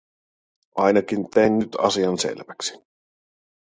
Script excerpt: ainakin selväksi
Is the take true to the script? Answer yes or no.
no